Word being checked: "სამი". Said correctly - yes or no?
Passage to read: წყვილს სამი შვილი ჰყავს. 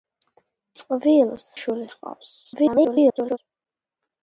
no